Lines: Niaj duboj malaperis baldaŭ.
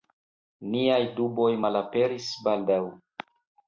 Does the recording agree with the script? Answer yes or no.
yes